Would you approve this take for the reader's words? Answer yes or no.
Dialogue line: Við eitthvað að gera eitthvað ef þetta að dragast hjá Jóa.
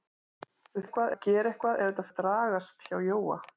yes